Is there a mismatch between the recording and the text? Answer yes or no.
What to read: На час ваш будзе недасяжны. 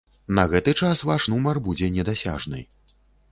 yes